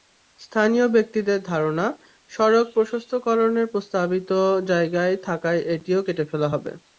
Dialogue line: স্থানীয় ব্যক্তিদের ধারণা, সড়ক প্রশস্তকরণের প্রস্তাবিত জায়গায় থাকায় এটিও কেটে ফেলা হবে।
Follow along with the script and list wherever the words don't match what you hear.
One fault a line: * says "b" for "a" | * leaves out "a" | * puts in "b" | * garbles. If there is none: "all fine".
all fine